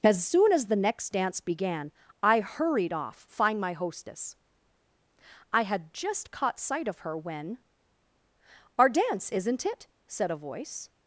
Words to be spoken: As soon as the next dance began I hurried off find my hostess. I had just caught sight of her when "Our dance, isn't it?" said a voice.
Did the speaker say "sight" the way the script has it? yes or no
yes